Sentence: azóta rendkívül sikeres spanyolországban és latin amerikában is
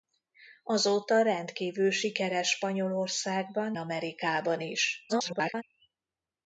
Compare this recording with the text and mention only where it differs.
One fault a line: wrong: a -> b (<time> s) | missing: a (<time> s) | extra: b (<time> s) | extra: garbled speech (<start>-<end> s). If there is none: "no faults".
missing: és latin (3.8 s)
extra: garbled speech (5.1-5.6 s)